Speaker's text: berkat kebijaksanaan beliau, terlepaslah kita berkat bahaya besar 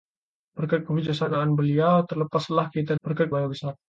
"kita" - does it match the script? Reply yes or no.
yes